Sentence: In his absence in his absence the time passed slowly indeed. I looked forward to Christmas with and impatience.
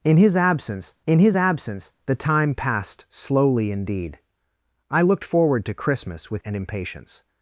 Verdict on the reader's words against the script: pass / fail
pass